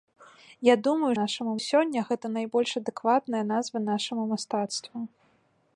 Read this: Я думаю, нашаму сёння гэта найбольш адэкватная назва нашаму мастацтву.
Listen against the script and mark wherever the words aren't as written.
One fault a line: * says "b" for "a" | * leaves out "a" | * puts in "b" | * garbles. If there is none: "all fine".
all fine